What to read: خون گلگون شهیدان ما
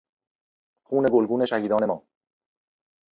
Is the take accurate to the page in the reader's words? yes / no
yes